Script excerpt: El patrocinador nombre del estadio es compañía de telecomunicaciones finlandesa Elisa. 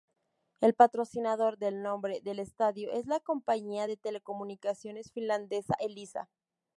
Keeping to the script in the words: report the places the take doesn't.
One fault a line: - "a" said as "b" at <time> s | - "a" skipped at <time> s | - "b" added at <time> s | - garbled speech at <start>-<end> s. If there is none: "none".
- "del" added at 1.6 s
- "la" added at 3.0 s